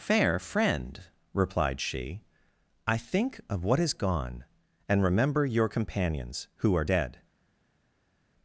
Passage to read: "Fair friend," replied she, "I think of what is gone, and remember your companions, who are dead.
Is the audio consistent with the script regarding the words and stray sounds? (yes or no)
yes